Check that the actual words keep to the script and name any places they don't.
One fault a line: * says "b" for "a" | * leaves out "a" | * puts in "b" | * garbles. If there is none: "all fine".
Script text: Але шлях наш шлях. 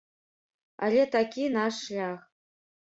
* says "такі" for "шлях"